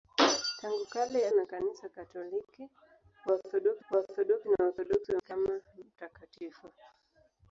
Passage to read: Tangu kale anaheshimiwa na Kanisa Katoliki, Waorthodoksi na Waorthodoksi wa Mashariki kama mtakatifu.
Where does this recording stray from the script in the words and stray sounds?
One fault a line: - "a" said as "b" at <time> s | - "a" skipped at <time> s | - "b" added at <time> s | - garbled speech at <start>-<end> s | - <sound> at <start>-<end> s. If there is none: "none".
- "anaheshimiwa" skipped at 1.3 s
- "Waorthodoksi" added at 3.9 s
- "Mashariki" skipped at 5.2 s